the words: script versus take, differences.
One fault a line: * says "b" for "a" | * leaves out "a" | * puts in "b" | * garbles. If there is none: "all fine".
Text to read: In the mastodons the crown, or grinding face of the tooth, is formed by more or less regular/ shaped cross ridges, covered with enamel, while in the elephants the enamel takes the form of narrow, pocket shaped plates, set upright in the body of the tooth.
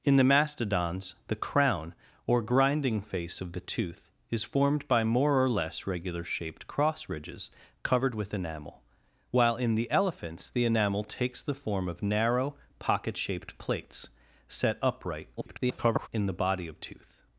* garbles
* leaves out "the"